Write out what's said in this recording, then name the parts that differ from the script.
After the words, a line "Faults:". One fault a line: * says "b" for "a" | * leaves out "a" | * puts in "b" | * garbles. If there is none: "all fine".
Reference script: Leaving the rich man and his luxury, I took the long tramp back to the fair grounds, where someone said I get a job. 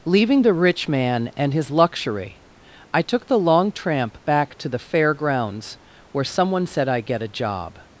Leaving the rich man and his luxury, I took the long tramp back to the fair grounds, where someone said I get a job.
Faults:
all fine